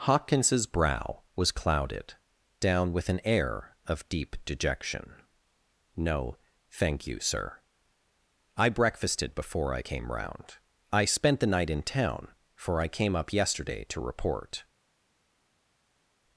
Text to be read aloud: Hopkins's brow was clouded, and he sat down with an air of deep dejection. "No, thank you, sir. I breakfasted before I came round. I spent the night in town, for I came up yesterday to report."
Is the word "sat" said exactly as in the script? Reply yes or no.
no